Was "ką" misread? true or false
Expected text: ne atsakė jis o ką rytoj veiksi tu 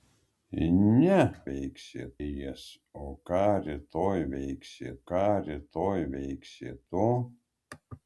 false